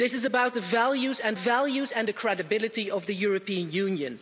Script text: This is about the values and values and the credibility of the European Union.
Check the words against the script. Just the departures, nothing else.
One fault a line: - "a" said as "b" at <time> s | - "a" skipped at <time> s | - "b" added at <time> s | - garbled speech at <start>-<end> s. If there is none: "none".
none